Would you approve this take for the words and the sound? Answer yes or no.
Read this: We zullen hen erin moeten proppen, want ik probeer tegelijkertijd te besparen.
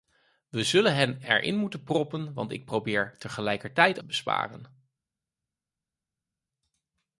yes